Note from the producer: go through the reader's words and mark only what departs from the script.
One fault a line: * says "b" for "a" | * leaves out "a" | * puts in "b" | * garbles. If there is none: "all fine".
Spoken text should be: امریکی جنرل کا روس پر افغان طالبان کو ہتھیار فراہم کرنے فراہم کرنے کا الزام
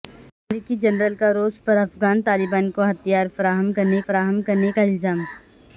all fine